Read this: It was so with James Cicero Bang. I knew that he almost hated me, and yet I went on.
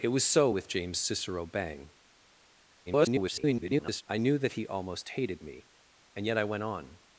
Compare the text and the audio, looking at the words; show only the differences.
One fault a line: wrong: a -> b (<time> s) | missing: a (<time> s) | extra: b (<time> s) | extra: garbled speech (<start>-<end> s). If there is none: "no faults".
extra: garbled speech (2.9-4.0 s)